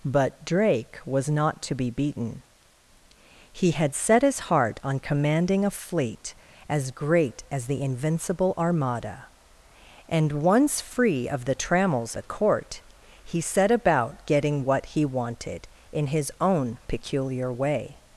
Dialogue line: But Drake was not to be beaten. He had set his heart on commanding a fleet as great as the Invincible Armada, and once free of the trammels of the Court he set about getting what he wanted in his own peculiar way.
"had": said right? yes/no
yes